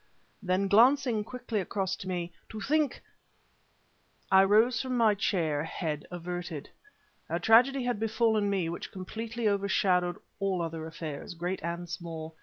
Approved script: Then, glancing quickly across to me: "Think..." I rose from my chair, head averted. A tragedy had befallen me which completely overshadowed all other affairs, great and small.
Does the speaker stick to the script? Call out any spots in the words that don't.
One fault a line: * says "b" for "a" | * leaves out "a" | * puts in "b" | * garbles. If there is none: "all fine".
* puts in "To"